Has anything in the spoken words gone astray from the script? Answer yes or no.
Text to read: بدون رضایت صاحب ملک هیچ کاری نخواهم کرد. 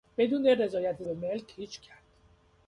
yes